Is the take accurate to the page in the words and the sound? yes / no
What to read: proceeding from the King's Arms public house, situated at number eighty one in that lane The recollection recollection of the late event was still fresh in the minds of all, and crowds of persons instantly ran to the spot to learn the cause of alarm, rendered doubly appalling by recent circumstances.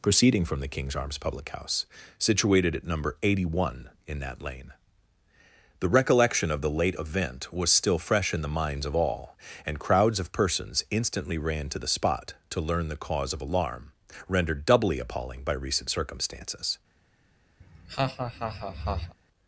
no